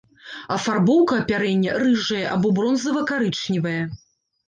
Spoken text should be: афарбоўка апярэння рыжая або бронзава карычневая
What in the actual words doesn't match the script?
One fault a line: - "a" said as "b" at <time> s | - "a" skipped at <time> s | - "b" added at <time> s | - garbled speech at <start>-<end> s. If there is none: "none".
none